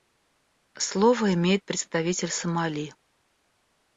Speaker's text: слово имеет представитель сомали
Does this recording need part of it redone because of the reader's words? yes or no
no